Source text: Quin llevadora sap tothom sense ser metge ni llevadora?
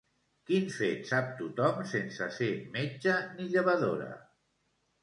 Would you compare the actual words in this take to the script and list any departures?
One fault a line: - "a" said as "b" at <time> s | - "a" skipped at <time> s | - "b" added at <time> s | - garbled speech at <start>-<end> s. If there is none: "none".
- "llevadora" said as "fet" at 0.8 s